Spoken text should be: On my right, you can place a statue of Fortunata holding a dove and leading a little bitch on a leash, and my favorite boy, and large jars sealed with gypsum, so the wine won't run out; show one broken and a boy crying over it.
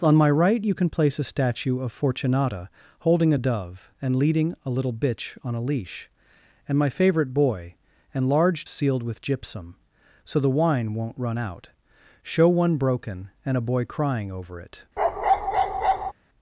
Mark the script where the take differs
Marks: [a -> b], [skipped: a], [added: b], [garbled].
On my right, you can place a statue of Fortunata holding a dove and leading a little bitch on a leash, and my favorite boy, and large [skipped: jars] sealed with gypsum, so the wine won't run out; show one broken and a boy crying over it.